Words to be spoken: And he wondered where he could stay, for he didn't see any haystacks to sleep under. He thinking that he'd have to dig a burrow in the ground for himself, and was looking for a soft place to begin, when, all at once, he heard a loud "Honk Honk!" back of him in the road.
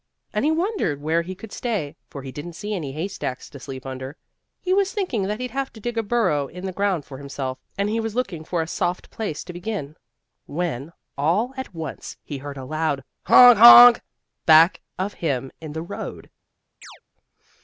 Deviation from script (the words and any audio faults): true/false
true